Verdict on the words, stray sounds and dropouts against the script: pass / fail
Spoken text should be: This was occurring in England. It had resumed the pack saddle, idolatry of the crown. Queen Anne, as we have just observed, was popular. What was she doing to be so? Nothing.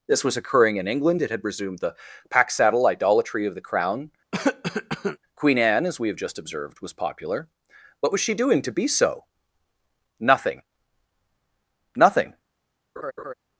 fail